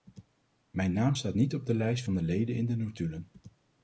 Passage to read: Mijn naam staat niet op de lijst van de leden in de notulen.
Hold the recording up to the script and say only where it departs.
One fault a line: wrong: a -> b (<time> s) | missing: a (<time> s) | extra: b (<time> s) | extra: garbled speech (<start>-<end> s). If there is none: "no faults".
no faults